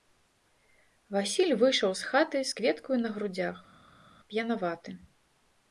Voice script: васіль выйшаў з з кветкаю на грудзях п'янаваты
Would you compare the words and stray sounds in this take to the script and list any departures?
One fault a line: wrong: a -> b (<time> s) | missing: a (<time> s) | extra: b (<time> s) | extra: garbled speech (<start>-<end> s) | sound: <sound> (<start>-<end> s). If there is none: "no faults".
extra: хаты (2.1 s)